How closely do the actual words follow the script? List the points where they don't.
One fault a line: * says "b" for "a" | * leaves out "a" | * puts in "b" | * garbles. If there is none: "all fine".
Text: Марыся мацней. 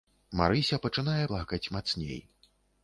* puts in "пачынае плакаць"